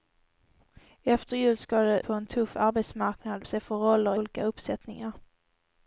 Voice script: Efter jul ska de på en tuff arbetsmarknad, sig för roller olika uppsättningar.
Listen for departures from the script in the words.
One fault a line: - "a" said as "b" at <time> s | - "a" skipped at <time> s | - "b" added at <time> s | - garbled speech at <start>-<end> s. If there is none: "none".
none